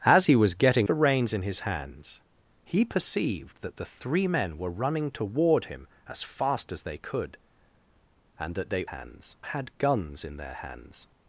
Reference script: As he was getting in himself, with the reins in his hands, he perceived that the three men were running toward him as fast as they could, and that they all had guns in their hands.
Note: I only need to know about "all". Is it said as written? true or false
false